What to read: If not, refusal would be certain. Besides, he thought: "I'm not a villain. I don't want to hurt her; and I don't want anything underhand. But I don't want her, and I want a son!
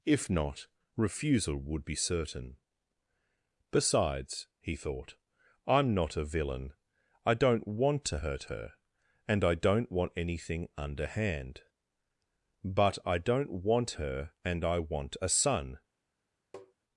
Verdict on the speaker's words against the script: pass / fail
pass